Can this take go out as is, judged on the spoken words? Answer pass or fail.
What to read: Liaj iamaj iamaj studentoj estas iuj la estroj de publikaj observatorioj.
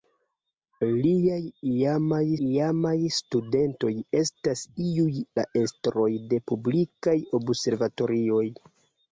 pass